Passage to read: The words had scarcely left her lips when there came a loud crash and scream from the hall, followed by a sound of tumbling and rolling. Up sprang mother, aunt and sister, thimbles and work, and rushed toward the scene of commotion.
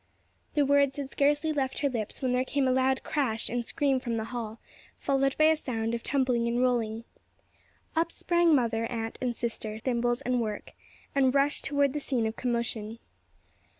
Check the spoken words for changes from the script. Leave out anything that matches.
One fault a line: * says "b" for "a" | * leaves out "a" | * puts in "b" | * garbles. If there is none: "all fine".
all fine